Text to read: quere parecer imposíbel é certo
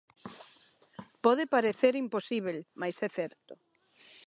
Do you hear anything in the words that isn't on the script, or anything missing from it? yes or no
yes